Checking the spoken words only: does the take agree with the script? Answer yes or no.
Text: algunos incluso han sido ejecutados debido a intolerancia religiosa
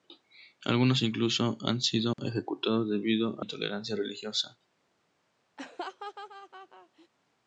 yes